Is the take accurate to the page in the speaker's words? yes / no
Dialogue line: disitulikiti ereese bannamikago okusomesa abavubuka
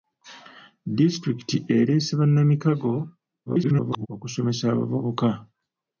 no